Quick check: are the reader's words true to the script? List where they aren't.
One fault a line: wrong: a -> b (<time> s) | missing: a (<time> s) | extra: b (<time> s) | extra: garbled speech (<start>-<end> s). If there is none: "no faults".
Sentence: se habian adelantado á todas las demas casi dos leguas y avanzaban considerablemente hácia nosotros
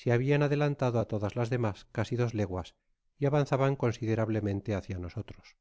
no faults